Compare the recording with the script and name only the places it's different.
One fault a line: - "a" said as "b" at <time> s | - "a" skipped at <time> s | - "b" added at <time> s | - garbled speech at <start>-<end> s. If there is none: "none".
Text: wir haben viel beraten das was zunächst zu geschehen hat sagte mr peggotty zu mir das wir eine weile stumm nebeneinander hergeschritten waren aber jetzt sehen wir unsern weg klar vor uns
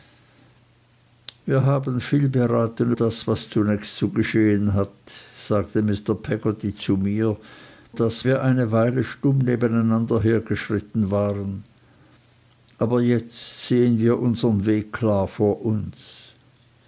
none